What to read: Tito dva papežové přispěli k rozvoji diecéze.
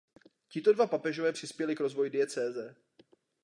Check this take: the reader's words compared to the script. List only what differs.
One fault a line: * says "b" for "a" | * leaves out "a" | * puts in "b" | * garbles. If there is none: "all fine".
all fine